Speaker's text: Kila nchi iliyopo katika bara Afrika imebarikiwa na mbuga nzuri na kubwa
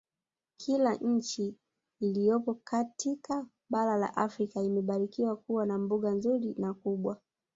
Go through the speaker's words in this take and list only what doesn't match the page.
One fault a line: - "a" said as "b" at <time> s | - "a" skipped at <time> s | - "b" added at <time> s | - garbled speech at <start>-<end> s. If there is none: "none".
- "la" added at 4.0 s
- "kuwa" added at 5.4 s